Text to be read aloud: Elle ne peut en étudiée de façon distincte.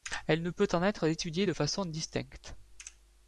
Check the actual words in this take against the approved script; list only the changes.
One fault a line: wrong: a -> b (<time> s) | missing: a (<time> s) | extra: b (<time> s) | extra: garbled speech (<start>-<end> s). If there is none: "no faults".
extra: être (0.8 s)